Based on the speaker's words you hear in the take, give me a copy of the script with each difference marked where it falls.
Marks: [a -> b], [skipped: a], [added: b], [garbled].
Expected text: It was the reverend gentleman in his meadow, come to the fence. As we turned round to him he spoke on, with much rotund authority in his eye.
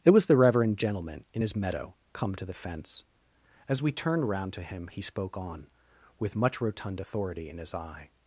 It was the reverend gentleman in his meadow, come to the fence. As we turned round to him he spoke on, with much rotund authority in his eye.